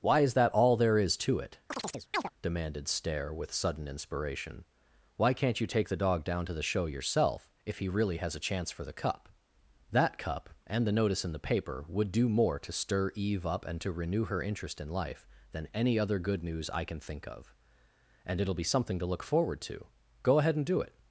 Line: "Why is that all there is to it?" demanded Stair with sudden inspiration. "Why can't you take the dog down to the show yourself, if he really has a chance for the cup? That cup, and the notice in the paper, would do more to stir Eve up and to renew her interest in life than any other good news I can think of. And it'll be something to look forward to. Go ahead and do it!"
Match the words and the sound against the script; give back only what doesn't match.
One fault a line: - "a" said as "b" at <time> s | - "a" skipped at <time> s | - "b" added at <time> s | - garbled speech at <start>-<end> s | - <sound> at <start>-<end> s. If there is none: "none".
- chirp at 1.7-2.3 s